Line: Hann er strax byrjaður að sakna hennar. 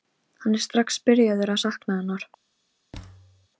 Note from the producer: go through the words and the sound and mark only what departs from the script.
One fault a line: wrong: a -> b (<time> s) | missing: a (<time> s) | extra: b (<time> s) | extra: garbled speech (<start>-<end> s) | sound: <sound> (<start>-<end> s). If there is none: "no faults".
sound: thud (2.9-3.5 s)